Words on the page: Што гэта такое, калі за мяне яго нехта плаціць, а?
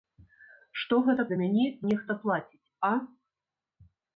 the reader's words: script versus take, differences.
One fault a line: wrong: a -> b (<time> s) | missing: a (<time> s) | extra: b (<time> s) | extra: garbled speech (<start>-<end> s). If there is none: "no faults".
missing: такое калі (1.2 s)
missing: яго (1.6 s)